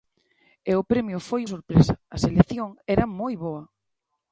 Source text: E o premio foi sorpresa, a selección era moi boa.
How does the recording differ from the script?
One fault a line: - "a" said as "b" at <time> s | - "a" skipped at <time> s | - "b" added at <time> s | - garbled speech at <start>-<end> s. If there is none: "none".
none